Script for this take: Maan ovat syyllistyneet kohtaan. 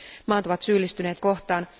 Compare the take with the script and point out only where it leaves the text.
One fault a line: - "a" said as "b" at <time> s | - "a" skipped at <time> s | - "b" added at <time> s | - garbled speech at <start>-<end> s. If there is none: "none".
none